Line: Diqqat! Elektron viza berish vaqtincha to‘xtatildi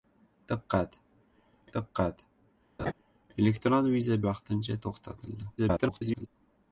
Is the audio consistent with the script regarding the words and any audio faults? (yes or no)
no